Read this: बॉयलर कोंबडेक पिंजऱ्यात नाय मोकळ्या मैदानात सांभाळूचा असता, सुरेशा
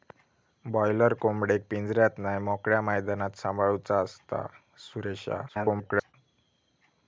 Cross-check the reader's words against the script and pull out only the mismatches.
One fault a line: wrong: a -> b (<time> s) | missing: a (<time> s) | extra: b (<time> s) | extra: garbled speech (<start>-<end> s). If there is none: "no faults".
extra: garbled speech (5.5-6.1 s)